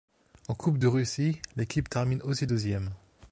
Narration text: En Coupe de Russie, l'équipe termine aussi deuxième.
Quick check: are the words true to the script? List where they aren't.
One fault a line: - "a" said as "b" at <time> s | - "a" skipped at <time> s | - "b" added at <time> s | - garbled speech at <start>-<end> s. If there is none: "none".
none